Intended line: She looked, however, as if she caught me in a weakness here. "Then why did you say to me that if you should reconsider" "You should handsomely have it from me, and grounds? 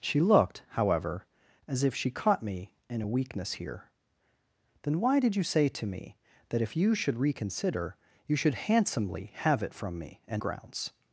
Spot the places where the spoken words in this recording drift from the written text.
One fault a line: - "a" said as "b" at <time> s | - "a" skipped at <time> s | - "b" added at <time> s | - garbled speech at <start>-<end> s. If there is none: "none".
none